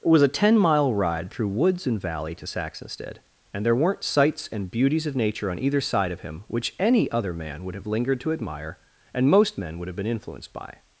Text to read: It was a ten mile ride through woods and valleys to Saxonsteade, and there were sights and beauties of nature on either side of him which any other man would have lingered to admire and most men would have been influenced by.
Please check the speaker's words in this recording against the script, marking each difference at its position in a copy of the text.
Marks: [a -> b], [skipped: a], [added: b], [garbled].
It was a ten mile ride through woods and [valleys -> valley] to Saxonsteade, and there [were -> weren't] sights and beauties of nature on either side of him which any other man would have lingered to admire and most men would have been influenced by.